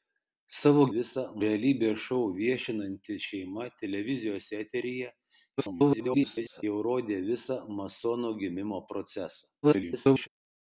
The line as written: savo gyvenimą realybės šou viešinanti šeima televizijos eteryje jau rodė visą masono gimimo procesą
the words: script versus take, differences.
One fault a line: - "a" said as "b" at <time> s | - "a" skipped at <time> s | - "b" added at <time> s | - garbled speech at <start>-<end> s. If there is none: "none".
- "gyvenimą" said as "visą" at 1.0 s
- garbled speech at 5.6-6.6 s
- garbled speech at 9.6-10.3 s